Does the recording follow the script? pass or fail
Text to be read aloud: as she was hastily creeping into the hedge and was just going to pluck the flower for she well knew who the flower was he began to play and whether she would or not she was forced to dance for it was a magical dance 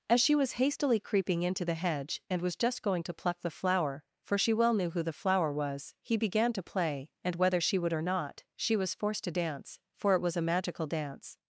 pass